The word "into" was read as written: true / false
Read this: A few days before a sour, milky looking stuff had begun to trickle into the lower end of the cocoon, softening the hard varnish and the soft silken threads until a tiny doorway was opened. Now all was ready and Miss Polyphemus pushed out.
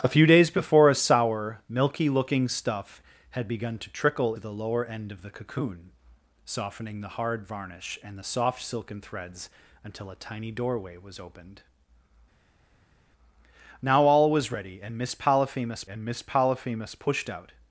false